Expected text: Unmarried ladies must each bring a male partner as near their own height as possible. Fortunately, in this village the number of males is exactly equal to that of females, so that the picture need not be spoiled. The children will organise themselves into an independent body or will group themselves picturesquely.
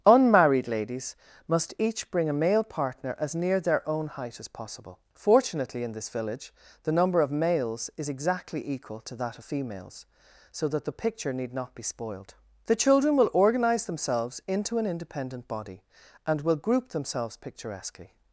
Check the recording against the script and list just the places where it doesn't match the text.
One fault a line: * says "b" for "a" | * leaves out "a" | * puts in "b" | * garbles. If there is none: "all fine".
* says "and" for "or"